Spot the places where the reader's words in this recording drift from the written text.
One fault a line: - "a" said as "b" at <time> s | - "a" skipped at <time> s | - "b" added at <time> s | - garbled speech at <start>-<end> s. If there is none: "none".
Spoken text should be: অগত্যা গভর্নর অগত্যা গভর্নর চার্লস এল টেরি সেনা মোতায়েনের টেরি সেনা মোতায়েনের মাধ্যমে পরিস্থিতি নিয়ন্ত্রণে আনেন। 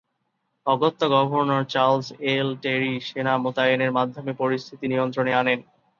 - "অগত্যা গভর্নর" skipped at 1.6 s
- "টেরি সেনা মোতায়েনের" skipped at 3.9 s